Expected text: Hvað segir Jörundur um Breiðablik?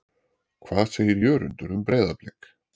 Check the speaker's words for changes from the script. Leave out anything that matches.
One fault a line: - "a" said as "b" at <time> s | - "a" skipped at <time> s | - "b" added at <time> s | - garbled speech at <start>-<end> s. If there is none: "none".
none